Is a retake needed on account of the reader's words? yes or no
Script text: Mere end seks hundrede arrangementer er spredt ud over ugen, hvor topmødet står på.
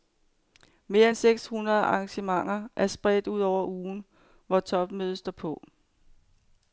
no